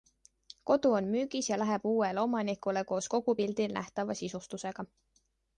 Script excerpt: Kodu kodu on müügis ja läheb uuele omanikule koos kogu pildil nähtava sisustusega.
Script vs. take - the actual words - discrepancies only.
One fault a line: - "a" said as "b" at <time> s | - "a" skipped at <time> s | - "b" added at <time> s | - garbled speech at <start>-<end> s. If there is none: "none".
- "kodu" skipped at 0.9 s